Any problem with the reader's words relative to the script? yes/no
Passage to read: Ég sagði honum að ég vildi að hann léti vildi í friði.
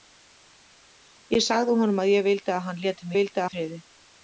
no